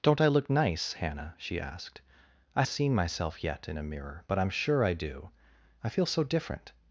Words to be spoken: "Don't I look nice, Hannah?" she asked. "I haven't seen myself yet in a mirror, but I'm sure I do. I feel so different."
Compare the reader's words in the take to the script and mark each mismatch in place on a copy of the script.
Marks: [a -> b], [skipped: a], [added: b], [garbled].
"Don't I look nice, Hannah?" she asked. "I [skipped: haven't] seen myself yet in a mirror, but I'm sure I do. I feel so different."